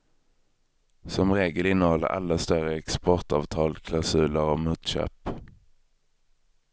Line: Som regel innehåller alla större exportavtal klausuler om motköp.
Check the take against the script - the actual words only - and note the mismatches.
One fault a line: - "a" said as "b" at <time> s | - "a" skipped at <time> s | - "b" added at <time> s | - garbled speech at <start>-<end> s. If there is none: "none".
none